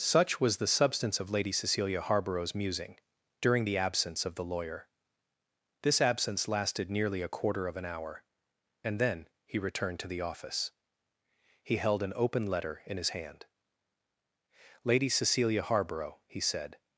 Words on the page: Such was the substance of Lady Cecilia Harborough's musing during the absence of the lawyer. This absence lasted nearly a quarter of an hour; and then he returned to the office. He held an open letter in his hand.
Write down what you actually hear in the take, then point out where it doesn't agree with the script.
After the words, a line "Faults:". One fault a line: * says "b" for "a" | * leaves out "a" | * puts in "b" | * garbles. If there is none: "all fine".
Such was the substance of Lady Cecilia Harborough's musing during the absence of the lawyer. This absence lasted nearly a quarter of an hour; and then he returned to the office. He held an open letter in his hand. "Lady Cecilia Harborough," he said
Faults:
* puts in "Lady Cecilia Harborough he said"